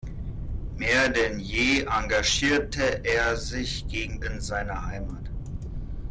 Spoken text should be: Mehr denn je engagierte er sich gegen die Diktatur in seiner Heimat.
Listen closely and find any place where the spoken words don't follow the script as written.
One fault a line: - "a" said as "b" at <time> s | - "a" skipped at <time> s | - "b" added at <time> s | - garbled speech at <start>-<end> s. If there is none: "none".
- "die Diktatur" skipped at 4.2 s